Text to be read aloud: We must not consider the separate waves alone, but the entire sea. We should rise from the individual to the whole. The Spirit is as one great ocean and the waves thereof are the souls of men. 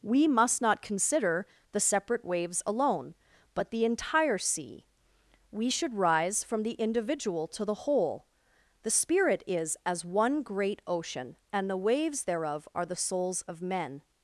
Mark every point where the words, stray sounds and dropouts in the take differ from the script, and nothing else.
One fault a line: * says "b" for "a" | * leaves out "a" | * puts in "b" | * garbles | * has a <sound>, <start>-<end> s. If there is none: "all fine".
all fine